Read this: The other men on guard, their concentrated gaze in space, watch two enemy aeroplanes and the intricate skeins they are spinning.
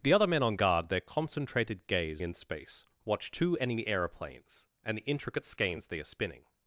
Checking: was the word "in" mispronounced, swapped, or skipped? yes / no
no